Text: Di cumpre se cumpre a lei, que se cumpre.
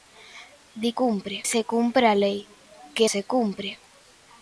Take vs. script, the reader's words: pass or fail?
pass